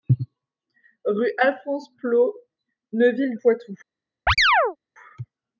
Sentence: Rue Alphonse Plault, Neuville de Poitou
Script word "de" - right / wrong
wrong